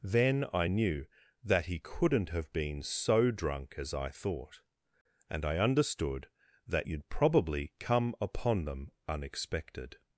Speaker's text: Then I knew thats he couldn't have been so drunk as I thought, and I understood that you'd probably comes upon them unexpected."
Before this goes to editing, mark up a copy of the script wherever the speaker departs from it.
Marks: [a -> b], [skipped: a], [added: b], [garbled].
Then I knew [thats -> that] he couldn't have been so drunk as I thought, and I understood that you'd probably [comes -> come] upon them unexpected."